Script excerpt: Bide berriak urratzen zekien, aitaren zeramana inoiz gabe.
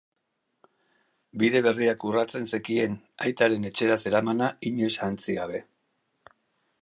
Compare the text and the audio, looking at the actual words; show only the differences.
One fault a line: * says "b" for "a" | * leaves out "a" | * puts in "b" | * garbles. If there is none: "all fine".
* puts in "etxera"
* puts in "ahantzi"